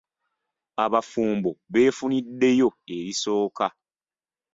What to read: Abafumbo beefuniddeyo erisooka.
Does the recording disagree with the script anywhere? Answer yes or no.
no